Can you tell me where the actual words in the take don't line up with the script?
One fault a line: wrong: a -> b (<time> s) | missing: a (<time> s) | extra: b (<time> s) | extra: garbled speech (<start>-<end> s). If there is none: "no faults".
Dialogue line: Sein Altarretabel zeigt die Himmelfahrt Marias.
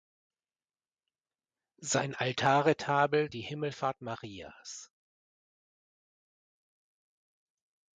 missing: zeigt (3.3 s)